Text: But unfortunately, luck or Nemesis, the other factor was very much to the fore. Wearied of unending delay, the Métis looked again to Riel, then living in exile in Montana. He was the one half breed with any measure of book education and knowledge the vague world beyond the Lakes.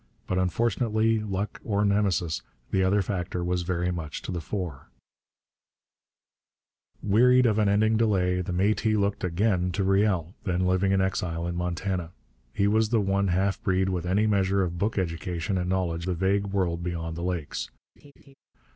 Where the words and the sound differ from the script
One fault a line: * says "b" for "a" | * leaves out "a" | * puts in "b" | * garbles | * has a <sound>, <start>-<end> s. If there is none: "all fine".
* has a laugh, 18.0-18.3 s